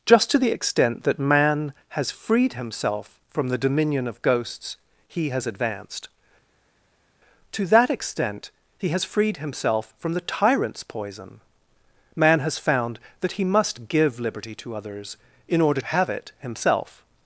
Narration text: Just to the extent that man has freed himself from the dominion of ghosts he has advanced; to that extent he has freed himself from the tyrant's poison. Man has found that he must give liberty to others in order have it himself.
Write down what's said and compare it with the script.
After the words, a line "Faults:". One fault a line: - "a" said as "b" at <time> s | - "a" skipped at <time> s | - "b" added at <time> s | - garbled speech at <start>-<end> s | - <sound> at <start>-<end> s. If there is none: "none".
Just to the extent that man has freed himself from the dominion of ghosts he has advanced; to that extent he has freed himself from the tyrant's poison. Man has found that he must give liberty to others in order have it himself.
Faults:
none